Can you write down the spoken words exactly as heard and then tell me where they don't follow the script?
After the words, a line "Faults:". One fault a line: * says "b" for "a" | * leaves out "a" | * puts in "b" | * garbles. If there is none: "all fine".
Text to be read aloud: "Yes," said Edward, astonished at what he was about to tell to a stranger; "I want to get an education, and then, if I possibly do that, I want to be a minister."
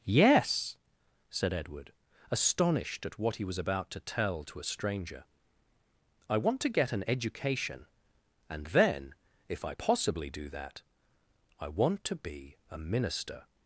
"Yes," said Edward, astonished at what he was about to tell to a stranger; "I want to get an education, and then, if I possibly do that, I want to be a minister."
Faults:
all fine